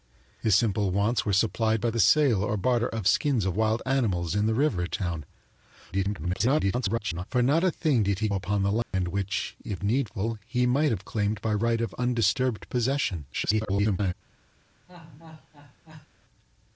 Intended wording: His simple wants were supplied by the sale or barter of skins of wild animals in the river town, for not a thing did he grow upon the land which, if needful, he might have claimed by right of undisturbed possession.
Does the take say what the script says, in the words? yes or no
no